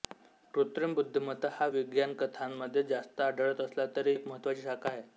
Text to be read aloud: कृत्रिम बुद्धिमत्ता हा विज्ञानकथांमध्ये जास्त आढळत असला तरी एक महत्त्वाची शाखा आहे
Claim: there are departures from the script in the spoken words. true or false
false